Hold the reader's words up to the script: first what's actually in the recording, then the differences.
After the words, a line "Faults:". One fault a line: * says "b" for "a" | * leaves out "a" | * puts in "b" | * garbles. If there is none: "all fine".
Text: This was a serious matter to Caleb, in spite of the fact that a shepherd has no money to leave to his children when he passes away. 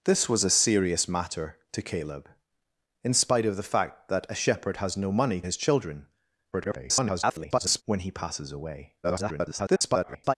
This was a serious matter to Caleb, in spite of the fact that a shepherd has no money his children [garbled] when he passes away. [garbled]
Faults:
* leaves out "to leave to"
* garbles
* garbles